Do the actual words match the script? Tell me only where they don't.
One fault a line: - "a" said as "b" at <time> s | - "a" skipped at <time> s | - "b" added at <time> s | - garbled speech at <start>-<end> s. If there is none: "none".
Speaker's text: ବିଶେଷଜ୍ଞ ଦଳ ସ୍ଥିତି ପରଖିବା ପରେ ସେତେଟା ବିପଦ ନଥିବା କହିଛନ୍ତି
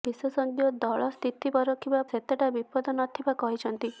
- "ପରେ" skipped at 2.0 s